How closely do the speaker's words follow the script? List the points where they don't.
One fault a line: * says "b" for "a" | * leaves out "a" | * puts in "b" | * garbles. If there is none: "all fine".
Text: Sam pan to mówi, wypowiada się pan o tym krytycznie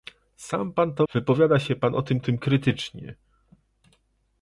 * leaves out "mówi"
* puts in "tym"